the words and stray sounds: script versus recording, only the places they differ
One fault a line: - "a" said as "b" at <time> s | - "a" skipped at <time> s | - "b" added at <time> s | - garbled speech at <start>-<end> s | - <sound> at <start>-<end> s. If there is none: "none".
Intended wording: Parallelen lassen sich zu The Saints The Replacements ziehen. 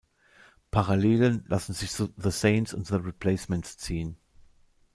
- "und" added at 2.7 s